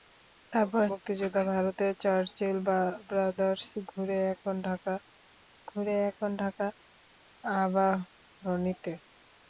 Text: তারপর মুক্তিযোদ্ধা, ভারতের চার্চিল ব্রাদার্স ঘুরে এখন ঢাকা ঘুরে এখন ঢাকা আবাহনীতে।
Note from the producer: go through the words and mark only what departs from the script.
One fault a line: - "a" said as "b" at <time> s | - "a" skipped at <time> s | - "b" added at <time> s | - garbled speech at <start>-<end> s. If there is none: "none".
none